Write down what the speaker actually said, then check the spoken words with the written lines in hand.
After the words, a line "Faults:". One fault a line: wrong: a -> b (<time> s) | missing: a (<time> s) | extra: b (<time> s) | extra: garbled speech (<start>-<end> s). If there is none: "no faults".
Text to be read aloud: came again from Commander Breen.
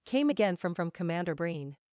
came again from from Commander Breen.
Faults:
extra: from (0.7 s)